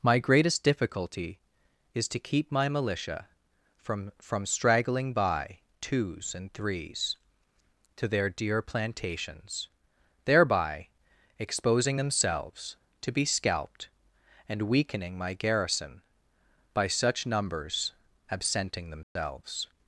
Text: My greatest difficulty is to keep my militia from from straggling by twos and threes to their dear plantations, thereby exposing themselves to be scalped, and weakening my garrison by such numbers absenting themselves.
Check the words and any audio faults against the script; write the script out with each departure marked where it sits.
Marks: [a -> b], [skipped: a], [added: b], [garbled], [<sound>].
My greatest difficulty is to keep my militia from from straggling by twos and threes to their dear plantations, thereby exposing themselves to be scalped, and weakening my garrison by such numbers absenting themselves. [dropout]